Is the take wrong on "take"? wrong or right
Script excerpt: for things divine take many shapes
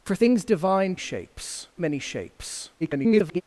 wrong